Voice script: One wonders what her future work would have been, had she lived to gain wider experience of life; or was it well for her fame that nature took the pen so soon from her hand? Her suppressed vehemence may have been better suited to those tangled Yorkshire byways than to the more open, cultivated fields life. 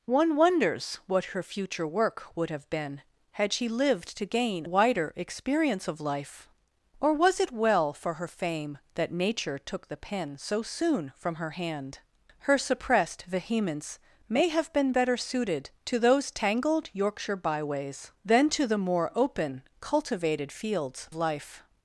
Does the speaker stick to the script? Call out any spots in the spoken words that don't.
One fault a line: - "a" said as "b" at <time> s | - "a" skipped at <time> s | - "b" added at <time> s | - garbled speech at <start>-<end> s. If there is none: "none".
none